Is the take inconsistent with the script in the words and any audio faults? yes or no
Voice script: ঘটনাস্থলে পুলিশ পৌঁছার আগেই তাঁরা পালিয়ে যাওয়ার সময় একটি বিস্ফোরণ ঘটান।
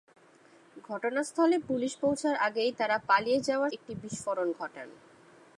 yes